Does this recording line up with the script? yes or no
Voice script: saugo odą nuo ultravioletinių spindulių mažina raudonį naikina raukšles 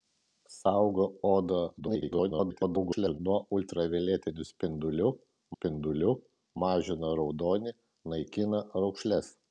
no